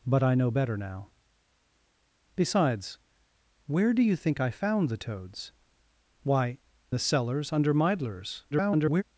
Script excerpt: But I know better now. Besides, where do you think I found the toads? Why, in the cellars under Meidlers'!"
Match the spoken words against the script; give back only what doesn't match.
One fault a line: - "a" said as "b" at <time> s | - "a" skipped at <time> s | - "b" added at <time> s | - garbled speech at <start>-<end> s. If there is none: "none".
- "in" skipped at 6.6 s
- garbled speech at 8.5-9.0 s